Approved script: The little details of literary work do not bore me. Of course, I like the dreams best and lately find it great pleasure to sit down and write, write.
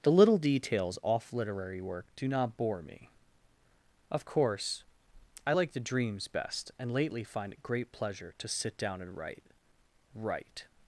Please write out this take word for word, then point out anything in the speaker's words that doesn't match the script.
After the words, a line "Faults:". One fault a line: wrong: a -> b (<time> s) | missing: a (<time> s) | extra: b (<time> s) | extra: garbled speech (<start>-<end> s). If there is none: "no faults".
The little details off literary work do not bore me. Of course, I like the dreams best and lately find it great pleasure to sit down and write, write.
Faults:
wrong: of -> off (1.0 s)